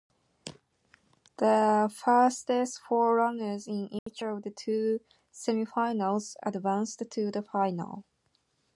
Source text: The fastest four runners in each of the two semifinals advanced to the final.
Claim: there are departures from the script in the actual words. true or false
false